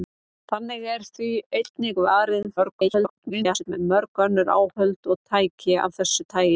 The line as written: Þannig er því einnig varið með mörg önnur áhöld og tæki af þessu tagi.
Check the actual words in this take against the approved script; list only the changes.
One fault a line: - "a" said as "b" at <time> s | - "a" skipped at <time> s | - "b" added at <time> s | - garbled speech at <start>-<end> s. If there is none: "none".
- garbled speech at 2.6-3.7 s